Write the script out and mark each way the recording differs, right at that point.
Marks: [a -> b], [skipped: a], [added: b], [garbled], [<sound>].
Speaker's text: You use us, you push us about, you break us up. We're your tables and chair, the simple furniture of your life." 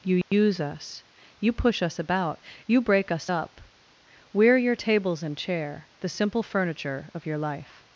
You use [dropout] us, you push us about, you break us up. We're your tables and chair, the simple furniture of your life."